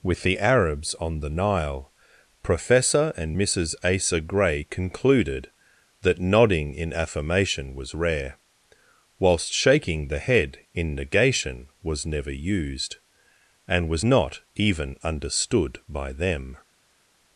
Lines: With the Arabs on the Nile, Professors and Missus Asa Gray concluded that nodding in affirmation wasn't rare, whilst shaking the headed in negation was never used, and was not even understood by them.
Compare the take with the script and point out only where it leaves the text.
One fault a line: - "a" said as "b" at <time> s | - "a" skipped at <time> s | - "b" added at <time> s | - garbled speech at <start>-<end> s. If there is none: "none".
- "Professors" said as "Professor" at 2.4 s
- "wasn't" said as "was" at 7.8 s
- "headed" said as "head" at 10.2 s